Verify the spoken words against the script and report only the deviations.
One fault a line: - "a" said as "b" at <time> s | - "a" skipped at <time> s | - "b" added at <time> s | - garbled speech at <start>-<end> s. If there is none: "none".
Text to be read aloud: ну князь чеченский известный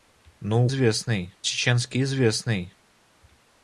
- "князь" said as "известный" at 0.6 s